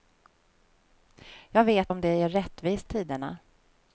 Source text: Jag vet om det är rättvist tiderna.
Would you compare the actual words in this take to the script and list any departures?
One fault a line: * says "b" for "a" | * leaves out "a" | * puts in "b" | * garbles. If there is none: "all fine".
all fine